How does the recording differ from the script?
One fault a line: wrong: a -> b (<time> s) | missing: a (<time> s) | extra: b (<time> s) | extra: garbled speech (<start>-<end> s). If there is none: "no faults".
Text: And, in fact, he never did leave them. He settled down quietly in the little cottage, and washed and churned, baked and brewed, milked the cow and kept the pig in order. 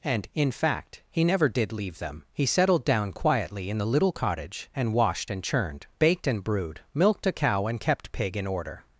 wrong: the -> a (7.3 s)
missing: the (8.1 s)